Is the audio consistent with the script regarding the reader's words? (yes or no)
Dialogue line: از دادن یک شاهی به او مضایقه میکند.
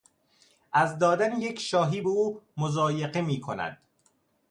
yes